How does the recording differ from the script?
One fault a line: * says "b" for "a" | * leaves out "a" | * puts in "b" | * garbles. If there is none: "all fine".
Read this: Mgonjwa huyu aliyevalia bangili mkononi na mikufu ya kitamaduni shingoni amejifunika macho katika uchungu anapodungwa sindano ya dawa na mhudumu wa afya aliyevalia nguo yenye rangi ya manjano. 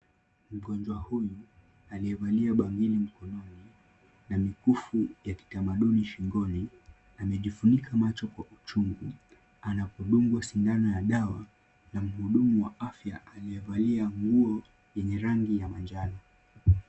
* says "kwa" for "katika"